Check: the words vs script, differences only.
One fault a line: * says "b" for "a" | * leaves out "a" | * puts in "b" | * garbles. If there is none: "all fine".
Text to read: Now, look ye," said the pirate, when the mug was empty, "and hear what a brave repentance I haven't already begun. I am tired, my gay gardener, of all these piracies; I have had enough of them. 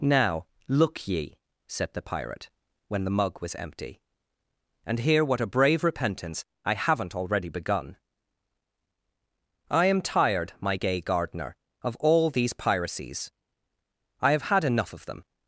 all fine